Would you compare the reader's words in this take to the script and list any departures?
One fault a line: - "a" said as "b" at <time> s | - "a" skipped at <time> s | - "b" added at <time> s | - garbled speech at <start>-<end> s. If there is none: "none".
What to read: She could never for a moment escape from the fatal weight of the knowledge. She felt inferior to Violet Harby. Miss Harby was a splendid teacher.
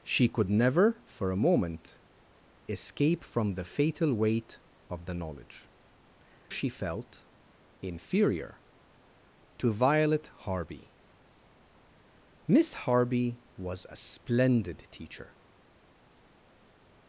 none